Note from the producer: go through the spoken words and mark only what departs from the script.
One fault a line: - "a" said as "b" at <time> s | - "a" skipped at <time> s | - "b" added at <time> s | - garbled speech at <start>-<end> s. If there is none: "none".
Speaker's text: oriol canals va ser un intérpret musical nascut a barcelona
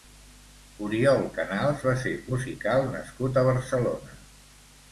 - "un intérpret" skipped at 2.1 s